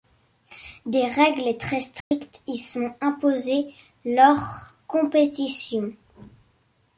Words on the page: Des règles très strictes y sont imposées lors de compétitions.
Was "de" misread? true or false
true